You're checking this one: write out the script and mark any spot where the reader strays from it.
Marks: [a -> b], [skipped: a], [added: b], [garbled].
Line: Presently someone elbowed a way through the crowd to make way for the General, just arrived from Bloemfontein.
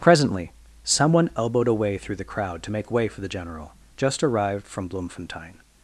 Presently someone elbowed a way through the crowd to make way for the General, just arrived from Bloemfontein.